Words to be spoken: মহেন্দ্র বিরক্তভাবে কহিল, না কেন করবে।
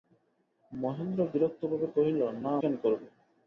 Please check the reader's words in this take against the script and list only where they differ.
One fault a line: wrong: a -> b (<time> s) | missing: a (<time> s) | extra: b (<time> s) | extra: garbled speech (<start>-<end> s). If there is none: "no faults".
no faults